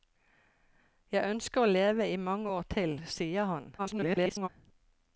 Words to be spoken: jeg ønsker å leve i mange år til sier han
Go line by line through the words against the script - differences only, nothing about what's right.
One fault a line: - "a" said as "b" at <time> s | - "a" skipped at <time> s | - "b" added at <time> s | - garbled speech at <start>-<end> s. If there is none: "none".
- garbled speech at 3.8-4.5 s